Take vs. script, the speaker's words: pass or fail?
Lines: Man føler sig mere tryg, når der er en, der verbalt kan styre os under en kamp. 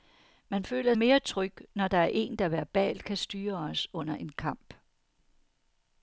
fail